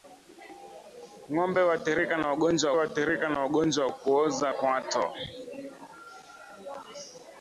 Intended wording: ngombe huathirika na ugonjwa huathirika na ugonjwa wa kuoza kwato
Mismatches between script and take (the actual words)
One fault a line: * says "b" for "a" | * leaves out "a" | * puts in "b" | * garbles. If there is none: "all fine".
all fine